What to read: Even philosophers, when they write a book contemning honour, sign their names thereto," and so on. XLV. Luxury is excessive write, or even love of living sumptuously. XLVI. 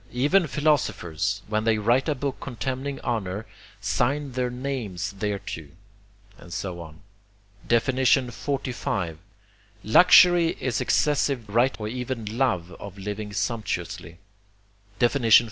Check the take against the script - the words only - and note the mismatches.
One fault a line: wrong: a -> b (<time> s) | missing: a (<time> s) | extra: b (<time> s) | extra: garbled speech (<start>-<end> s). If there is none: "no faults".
no faults